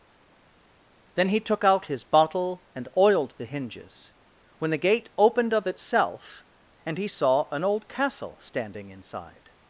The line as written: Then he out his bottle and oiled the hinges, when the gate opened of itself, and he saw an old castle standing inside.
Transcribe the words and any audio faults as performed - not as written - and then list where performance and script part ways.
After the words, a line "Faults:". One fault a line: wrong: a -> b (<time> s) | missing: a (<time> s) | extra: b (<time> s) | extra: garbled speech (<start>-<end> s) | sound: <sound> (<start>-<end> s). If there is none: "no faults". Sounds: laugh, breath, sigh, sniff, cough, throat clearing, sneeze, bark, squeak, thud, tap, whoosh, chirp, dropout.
Then he took out his bottle and oiled the hinges, when the gate opened of itself, and he saw an old castle standing inside.
Faults:
extra: took (1.4 s)